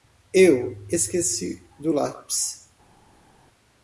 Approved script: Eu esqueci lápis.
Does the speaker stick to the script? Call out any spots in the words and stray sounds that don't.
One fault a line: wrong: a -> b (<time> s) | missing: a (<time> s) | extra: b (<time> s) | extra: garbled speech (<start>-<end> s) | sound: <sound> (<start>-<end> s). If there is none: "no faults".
extra: do (1.8 s)